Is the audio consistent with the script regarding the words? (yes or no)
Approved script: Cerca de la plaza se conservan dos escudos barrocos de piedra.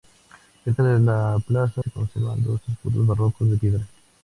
yes